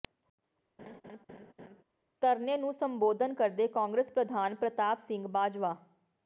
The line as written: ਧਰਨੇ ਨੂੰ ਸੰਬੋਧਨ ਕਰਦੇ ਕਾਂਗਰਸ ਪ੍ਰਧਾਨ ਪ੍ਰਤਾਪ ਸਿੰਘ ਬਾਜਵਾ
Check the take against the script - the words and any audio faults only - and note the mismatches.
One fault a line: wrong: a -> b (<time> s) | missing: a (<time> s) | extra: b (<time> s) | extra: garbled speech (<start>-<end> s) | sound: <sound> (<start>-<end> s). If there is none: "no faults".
sound: laugh (0.8-1.8 s)